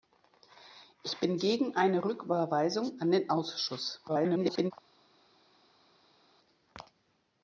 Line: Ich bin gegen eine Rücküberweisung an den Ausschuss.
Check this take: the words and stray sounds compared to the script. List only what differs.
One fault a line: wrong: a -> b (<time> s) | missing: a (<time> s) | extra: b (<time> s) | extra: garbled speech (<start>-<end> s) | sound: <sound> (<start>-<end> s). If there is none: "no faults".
extra: garbled speech (4.1-4.7 s)